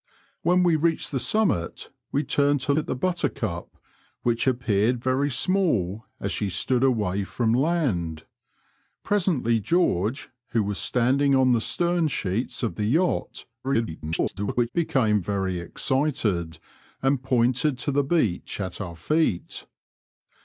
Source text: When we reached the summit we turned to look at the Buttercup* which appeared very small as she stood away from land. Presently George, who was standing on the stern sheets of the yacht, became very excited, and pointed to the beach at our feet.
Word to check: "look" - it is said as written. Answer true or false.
false